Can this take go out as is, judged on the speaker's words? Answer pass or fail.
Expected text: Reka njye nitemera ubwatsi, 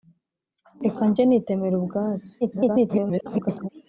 fail